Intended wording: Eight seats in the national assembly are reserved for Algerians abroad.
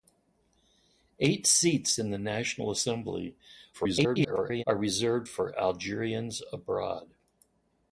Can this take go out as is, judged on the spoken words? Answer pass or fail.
fail